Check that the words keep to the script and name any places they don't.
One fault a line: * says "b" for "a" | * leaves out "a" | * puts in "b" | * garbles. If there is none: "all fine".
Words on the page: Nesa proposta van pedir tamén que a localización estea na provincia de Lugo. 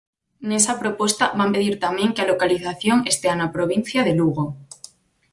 all fine